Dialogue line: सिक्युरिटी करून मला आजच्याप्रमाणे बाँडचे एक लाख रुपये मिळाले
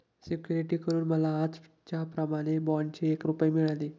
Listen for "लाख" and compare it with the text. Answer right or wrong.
wrong